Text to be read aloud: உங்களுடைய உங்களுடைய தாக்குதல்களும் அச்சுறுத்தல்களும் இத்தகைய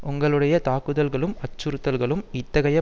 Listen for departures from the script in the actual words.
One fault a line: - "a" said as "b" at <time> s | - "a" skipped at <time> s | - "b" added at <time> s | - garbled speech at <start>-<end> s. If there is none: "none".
- "உங்களுடைய" skipped at 0.6 s